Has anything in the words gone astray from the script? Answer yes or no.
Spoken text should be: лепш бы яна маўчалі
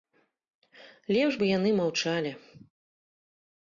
yes